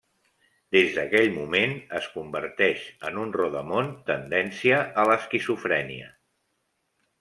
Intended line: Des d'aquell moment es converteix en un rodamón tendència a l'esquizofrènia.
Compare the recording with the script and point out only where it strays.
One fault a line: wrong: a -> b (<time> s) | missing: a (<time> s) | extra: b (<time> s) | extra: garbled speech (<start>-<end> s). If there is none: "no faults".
no faults